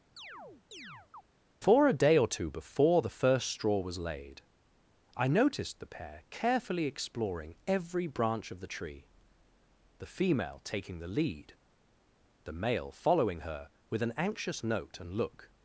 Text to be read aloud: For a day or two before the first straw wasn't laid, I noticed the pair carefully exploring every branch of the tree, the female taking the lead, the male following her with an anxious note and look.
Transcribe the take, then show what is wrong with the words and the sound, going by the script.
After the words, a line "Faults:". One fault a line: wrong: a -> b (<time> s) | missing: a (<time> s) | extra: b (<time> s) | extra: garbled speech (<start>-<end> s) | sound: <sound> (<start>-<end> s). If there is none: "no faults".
For a day or two before the first straw was laid, I noticed the pair carefully exploring every branch of the tree, the female taking the lead, the male following her with an anxious note and look.
Faults:
sound: chirp (0.2-1.2 s)
wrong: wasn't -> was (3.8 s)